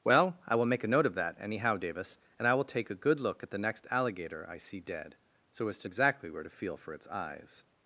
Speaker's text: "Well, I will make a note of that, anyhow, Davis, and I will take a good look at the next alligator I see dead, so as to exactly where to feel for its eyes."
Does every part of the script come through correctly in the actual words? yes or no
yes